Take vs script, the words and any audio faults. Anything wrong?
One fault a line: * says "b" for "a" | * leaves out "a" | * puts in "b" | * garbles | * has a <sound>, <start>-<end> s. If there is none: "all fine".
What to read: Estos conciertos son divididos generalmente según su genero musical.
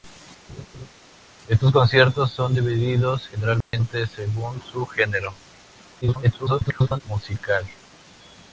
* has a laugh, 0.5-0.9 s
* has a dropout, 3.6-3.7 s
* garbles